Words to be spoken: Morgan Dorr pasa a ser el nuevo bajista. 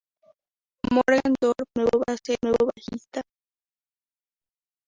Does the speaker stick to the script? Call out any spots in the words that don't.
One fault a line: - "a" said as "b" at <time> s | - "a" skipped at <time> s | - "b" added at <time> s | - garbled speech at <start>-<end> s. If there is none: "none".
- "pasa" said as "nuevo" at 1.7 s
- "el" skipped at 2.4 s